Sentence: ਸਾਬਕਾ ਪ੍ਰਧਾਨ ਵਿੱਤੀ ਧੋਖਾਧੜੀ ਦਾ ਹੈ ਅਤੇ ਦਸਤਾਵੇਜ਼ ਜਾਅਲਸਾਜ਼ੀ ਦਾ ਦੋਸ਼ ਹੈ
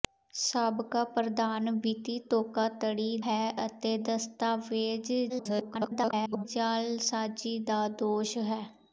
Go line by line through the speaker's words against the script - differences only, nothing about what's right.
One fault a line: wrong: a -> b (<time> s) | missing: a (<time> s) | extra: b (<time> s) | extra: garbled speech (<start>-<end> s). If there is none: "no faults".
missing: ਦਾ (3.2 s)
extra: garbled speech (5.3-6.5 s)